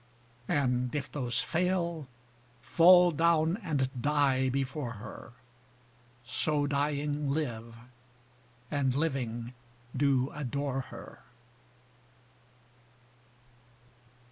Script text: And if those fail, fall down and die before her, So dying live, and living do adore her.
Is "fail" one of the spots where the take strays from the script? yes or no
no